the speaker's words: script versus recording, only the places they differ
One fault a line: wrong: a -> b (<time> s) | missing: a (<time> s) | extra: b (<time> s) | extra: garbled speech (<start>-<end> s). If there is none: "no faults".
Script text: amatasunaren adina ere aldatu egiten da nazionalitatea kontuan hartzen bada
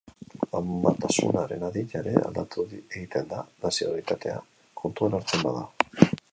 no faults